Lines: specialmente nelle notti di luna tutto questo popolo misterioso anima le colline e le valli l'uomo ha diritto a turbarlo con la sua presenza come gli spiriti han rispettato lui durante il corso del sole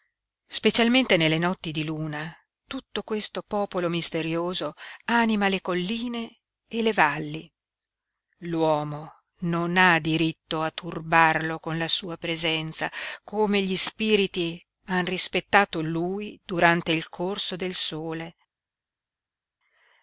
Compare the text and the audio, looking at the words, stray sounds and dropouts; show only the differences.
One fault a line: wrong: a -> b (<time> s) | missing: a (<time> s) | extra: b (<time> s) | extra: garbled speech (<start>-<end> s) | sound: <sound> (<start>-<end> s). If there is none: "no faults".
extra: non (9.4 s)